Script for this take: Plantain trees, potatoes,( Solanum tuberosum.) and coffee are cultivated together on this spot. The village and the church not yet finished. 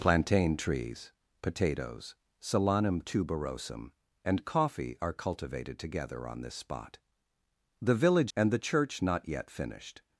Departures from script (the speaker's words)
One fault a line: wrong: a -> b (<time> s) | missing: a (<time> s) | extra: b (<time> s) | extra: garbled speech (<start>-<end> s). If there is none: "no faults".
no faults